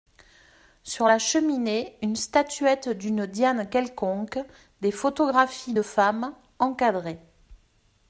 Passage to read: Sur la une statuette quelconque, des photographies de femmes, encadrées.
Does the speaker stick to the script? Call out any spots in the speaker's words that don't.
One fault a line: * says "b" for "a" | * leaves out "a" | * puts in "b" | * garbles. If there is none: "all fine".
* puts in "cheminée"
* puts in "d'une Diane"